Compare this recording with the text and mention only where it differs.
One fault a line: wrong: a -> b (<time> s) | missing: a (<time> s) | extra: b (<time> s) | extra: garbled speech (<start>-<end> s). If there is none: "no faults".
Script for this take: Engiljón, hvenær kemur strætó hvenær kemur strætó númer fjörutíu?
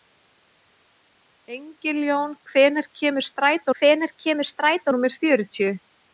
no faults